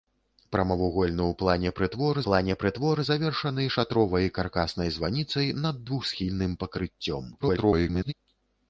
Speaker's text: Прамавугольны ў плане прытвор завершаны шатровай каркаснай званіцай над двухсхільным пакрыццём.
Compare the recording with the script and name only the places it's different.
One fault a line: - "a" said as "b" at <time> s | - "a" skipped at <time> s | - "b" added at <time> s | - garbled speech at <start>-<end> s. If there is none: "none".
- "плане прытвор" added at 2.3 s
- garbled speech at 7.4-8.1 s